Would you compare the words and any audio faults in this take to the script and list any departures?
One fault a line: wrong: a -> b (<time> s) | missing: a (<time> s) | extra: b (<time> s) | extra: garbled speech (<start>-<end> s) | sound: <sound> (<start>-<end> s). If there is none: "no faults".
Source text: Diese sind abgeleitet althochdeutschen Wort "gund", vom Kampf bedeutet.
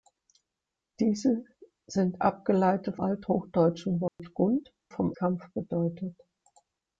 sound: dropout (4.1-4.2 s)